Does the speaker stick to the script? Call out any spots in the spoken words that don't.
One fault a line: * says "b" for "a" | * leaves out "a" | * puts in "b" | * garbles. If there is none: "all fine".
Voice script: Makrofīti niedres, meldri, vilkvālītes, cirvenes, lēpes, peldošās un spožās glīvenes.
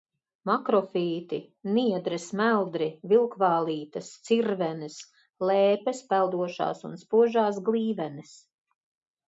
all fine